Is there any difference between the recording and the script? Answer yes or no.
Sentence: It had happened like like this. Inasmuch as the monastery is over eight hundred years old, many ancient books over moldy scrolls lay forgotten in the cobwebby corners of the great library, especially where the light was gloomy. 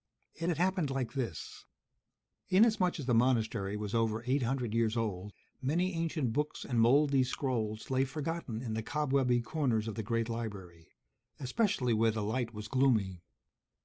yes